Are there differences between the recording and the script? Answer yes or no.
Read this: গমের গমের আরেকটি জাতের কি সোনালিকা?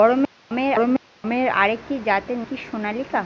no